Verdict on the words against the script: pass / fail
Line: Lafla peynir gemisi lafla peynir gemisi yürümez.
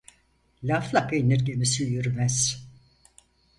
fail